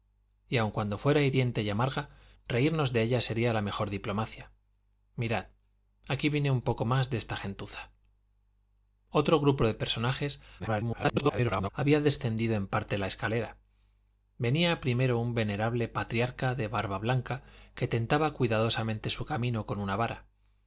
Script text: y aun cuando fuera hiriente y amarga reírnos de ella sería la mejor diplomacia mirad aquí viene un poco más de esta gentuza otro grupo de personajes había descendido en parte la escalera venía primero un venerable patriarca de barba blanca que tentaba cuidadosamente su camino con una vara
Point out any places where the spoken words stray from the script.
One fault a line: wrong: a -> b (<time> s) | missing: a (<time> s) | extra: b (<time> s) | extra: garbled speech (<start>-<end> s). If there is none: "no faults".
extra: garbled speech (10.6-11.7 s)